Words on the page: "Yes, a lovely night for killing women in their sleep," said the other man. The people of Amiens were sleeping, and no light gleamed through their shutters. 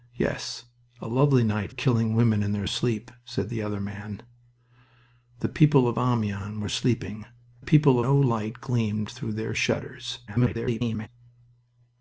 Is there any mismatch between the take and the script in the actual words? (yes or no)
yes